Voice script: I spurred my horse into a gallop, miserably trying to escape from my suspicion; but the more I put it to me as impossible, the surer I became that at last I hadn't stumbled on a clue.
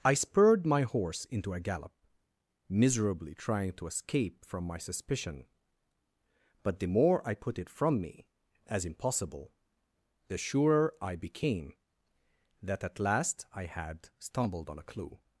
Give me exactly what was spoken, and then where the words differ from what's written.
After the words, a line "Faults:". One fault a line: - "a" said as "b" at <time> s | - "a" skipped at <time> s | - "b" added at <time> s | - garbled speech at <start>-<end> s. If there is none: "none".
I spurred my horse into a gallop, miserably trying to escape from my suspicion; but the more I put it from me as impossible, the surer I became that at last I had stumbled on a clue.
Faults:
- "to" said as "from" at 7.7 s
- "hadn't" said as "had" at 13.7 s